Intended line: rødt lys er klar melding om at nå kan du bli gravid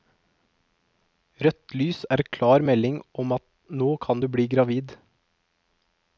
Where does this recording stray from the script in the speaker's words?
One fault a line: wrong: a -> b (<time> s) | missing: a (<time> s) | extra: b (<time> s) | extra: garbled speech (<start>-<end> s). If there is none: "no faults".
no faults